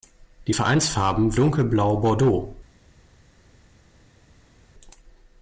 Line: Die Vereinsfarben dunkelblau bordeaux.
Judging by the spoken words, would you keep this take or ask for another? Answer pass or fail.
pass